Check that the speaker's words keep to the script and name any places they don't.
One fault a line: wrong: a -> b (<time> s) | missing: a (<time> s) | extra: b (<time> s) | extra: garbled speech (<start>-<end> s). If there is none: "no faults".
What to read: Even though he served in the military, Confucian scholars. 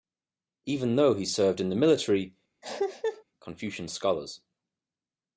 no faults